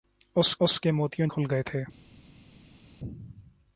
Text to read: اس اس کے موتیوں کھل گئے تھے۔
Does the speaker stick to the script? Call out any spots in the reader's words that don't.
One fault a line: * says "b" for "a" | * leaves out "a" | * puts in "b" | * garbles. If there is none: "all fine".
all fine